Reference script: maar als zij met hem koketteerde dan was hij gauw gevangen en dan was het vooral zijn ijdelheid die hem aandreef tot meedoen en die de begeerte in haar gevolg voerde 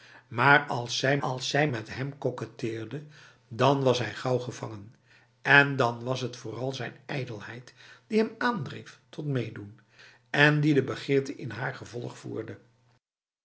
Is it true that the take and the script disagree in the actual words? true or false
true